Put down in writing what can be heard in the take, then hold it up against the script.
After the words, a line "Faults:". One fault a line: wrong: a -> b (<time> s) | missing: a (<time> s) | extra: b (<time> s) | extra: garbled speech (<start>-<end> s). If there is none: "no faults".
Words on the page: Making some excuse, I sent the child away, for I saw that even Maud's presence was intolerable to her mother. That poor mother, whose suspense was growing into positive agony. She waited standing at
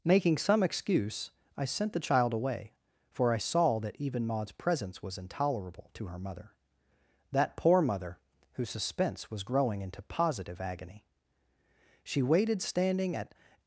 Making some excuse, I sent the child away, for I saw that even Maud's presence was intolerable to her mother. That poor mother, whose suspense was growing into positive agony. She waited standing at
Faults:
no faults